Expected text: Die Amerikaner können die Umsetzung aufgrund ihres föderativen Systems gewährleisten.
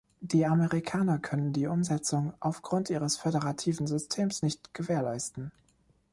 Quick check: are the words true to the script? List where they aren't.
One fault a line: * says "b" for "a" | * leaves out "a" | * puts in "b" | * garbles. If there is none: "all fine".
* puts in "nicht"